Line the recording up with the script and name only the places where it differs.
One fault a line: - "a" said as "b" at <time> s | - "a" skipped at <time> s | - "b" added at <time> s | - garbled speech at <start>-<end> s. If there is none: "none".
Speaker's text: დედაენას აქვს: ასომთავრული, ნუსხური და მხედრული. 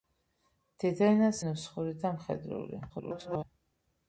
- "აქვს ასომთავრული" skipped at 1.4 s
- garbled speech at 2.9-3.4 s